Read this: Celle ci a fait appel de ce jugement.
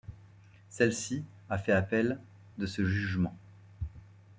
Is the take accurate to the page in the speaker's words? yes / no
yes